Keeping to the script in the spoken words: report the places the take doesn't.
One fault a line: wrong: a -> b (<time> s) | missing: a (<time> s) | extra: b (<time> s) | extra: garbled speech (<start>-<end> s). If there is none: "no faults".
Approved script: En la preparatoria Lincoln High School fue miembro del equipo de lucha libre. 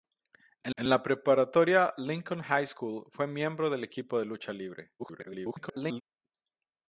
extra: en (0.8 s)
extra: garbled speech (5.0-6.0 s)